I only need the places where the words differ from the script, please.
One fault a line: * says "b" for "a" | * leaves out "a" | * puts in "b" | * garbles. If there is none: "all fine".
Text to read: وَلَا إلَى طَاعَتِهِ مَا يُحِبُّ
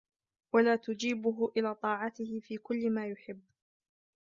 * puts in "تُجِيبُهُ"
* puts in "فِي كُلِّ"